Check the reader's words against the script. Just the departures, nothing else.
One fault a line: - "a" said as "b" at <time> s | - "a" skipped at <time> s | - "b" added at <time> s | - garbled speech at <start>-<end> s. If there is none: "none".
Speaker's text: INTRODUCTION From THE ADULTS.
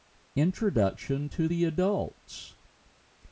- "From" said as "TO" at 1.3 s